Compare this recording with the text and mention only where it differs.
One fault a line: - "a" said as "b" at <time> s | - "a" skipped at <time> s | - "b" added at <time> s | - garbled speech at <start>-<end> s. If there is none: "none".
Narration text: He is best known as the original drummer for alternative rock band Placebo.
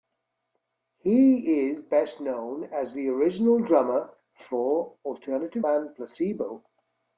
- "rock" skipped at 5.6 s